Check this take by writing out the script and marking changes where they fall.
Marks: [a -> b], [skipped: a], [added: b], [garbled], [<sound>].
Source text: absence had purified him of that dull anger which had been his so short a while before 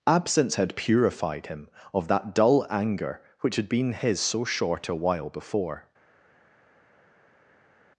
absence had purified him of that dull anger which had been his so short a while before